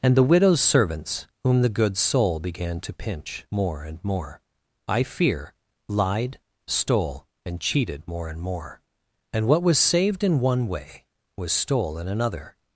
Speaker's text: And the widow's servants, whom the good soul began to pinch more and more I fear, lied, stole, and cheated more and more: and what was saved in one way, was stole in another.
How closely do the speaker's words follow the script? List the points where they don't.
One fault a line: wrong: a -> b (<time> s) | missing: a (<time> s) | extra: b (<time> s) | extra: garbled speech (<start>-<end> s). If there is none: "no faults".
no faults